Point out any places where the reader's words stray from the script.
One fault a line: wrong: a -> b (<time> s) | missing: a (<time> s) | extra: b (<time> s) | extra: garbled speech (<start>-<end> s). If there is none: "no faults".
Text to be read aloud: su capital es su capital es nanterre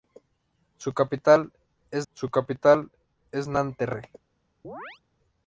no faults